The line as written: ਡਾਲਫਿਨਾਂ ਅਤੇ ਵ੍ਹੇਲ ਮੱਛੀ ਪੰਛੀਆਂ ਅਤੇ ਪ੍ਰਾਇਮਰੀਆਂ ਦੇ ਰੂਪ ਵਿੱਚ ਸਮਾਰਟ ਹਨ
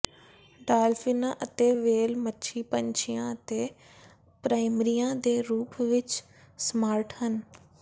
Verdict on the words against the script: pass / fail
pass